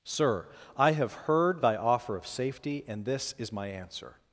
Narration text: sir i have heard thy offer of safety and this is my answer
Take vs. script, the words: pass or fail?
pass